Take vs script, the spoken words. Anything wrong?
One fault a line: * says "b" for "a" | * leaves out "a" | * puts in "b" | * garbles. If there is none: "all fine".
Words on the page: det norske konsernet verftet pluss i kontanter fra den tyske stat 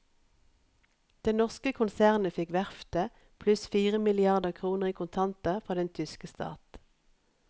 * puts in "fikk"
* puts in "fire milliarder kroner"